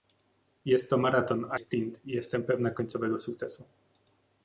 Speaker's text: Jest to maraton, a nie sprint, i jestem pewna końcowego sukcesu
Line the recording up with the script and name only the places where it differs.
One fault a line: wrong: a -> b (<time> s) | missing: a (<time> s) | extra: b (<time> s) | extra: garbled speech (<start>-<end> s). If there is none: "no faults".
missing: nie (1.6 s)